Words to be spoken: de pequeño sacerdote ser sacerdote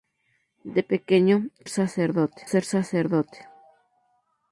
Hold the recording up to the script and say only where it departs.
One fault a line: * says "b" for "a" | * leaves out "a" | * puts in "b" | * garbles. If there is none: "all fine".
all fine